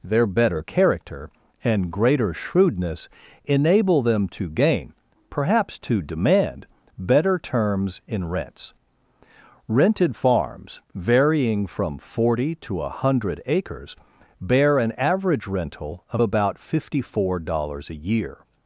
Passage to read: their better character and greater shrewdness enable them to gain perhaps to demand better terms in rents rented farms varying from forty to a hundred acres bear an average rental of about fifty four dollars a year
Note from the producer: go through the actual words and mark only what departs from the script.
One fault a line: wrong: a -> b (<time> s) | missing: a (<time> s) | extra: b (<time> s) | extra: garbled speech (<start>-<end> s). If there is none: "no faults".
no faults